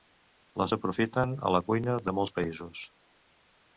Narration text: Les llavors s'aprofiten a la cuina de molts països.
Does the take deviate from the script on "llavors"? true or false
true